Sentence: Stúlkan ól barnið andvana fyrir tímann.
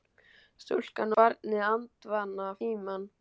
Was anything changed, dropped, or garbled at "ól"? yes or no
yes